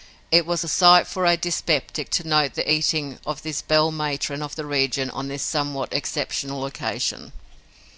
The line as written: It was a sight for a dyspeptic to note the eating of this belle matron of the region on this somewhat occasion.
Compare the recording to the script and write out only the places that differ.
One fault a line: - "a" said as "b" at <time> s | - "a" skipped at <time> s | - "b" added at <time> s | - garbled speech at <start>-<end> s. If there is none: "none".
- "exceptional" added at 5.9 s